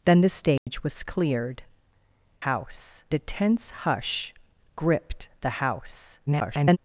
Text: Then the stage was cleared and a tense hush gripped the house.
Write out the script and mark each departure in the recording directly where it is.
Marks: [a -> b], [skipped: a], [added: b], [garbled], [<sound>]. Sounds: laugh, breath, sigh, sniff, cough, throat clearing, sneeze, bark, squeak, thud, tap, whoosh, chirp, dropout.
Then the stage [dropout] was cleared [and -> house] a tense hush gripped the house. [garbled]